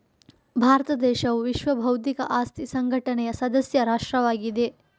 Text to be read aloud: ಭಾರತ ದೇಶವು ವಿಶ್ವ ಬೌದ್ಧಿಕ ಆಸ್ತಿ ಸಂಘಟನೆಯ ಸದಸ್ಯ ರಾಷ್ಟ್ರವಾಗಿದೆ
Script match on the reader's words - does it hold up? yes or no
yes